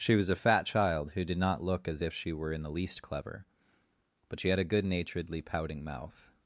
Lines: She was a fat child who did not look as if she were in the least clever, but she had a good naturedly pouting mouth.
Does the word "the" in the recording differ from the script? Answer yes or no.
no